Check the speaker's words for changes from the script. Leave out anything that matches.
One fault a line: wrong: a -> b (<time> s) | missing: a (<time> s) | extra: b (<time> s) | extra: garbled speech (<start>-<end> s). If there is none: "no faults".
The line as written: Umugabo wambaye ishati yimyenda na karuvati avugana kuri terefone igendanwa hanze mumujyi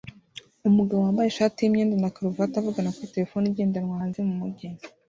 no faults